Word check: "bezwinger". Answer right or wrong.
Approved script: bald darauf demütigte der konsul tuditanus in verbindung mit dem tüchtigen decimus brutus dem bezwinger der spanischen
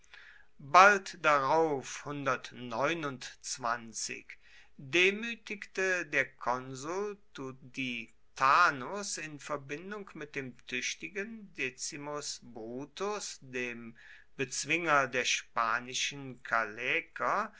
right